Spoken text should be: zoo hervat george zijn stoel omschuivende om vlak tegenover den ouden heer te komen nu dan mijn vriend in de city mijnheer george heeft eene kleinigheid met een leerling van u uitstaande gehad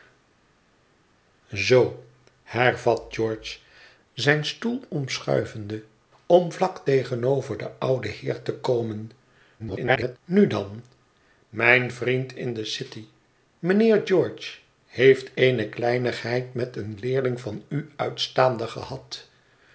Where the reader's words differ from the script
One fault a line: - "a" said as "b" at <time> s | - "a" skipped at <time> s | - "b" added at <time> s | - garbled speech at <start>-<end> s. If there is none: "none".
- garbled speech at 9.6-10.2 s